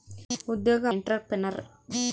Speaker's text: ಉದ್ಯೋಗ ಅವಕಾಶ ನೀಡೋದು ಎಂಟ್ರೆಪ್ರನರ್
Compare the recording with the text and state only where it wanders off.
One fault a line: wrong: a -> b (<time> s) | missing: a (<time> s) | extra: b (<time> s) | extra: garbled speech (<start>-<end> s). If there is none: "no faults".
missing: ಅವಕಾಶ ನೀಡೋದು (0.8 s)